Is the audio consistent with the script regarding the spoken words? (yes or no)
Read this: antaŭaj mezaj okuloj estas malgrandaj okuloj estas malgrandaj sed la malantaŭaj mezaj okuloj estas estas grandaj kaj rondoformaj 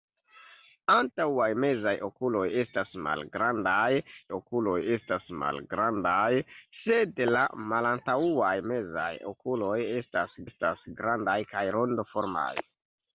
yes